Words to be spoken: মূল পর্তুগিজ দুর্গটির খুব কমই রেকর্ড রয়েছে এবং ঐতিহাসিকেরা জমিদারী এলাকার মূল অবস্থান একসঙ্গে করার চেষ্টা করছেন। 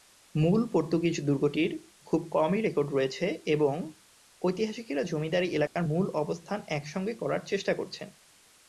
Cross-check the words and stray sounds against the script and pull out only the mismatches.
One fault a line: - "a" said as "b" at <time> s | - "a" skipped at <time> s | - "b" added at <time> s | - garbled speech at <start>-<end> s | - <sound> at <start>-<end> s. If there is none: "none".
- dropout at 5.7-5.8 s